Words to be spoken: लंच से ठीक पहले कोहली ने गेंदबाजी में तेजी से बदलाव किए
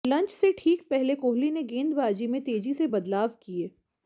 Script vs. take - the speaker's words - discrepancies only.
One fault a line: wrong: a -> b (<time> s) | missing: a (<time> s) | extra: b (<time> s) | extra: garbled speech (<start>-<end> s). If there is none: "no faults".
no faults